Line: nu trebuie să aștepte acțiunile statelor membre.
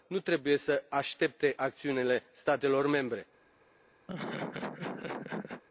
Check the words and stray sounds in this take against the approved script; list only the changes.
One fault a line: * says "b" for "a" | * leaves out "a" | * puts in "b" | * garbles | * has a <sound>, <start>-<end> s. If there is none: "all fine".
* has a laugh, 4.1-5.6 s